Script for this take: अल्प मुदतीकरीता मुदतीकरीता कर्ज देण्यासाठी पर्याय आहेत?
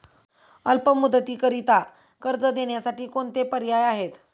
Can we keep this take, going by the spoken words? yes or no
no